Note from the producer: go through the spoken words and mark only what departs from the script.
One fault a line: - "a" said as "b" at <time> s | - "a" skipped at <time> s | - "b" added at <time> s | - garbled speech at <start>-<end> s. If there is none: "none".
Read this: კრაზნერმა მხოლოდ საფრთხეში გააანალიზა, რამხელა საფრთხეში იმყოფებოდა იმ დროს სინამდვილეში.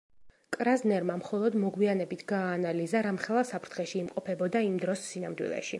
- "საფრთხეში" said as "მოგვიანებით" at 1.6 s